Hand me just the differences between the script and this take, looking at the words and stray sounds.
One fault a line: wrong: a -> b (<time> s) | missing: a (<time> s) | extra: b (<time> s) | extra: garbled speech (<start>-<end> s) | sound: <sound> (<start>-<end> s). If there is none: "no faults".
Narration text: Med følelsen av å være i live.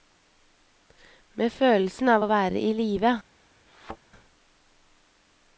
sound: thud (3.7-4.0 s)